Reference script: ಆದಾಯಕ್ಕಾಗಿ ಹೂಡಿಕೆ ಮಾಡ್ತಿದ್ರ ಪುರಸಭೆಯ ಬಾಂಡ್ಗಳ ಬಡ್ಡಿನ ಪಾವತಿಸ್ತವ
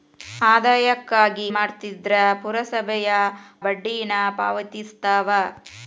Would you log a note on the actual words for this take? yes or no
yes